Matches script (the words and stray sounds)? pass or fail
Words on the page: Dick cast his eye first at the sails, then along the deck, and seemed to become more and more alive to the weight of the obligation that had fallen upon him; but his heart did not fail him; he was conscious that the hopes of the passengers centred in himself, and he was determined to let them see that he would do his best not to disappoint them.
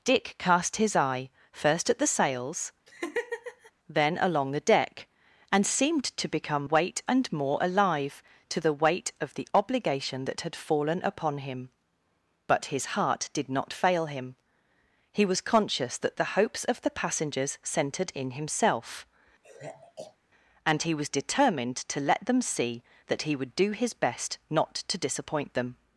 fail